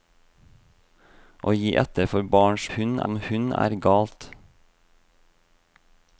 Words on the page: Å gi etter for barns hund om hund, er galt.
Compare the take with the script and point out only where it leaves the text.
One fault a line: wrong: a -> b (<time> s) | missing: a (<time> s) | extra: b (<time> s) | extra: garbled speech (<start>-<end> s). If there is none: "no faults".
no faults